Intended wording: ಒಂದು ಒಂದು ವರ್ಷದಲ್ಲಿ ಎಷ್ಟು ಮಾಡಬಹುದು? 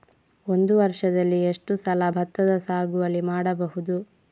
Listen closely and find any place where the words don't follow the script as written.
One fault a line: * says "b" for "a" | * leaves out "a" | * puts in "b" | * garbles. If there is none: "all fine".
* leaves out "ಒಂದು"
* puts in "ಸಲ ಭತ್ತದ ಸಾಗುವಳಿ"